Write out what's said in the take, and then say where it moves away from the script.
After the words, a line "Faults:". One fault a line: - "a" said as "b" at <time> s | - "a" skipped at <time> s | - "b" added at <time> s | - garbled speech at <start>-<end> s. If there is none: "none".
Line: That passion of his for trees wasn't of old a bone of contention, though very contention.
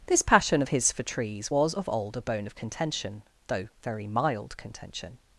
This passion of his for trees was of old a bone of contention, though very mild contention.
Faults:
- "That" said as "This" at 0.1 s
- "wasn't" said as "was" at 1.5 s
- "mild" added at 4.1 s